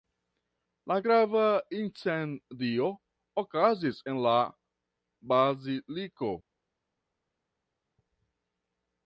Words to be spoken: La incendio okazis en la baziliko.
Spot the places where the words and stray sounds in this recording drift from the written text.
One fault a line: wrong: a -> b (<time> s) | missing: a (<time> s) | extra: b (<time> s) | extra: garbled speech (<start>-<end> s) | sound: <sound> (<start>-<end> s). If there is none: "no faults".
extra: grava (1.0 s)